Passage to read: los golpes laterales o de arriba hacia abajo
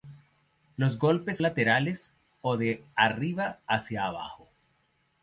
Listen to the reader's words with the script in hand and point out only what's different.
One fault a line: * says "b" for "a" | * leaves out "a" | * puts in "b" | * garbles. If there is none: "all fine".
all fine